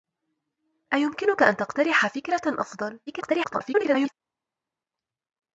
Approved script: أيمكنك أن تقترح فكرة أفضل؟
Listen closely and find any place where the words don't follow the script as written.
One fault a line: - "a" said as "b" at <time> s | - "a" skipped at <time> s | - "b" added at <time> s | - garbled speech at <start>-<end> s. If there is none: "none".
- garbled speech at 3.1-4.1 s